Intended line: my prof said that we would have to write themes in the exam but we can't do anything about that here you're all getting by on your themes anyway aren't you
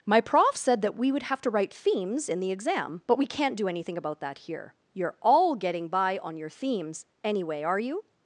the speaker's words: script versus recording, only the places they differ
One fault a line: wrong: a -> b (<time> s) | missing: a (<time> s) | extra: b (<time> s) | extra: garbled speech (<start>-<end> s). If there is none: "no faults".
wrong: aren't -> are (7.6 s)